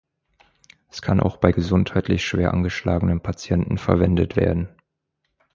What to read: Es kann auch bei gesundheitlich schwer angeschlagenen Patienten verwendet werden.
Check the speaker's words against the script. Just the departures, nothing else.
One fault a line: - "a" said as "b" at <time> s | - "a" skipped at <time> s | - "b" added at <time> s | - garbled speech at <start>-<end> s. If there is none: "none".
none